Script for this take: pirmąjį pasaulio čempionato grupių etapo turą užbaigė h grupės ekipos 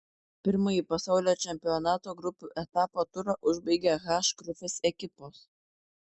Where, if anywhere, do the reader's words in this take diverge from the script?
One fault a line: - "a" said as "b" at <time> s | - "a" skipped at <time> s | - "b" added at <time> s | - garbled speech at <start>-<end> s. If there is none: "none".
none